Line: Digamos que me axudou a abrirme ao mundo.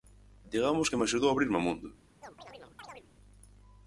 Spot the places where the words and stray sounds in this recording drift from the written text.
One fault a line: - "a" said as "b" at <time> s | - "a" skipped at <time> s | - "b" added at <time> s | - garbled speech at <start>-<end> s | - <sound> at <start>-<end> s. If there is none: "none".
- chirp at 2.2-3.1 s